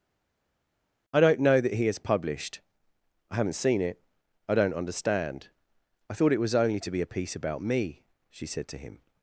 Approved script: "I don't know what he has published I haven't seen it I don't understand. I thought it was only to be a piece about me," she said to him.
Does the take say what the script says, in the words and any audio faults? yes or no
no